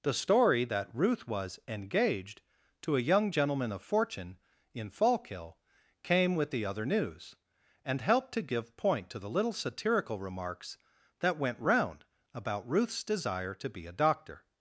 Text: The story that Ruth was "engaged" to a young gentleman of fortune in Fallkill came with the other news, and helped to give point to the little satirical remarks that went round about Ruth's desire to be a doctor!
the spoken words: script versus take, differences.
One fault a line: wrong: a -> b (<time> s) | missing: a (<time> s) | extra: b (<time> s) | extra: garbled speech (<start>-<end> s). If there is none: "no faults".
no faults